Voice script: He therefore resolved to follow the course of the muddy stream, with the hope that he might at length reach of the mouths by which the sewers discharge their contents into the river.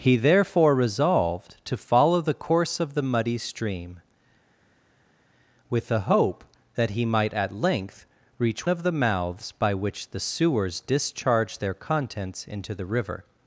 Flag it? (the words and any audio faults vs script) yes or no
no